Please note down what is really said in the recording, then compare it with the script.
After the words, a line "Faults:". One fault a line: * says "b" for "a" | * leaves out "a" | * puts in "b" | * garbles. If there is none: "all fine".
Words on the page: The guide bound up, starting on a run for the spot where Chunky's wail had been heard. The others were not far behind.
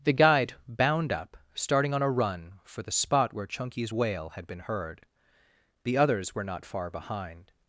The guide bound up, starting on a run for the spot where Chunky's wail had been heard. The others were not far behind.
Faults:
all fine